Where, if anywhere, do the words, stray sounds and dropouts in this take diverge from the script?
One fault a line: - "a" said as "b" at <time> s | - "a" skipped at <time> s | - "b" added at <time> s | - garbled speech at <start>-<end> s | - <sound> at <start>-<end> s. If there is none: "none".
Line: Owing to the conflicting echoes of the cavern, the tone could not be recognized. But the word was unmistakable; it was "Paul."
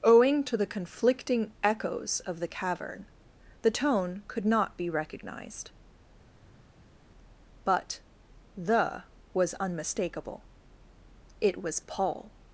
- "word" skipped at 9.0 s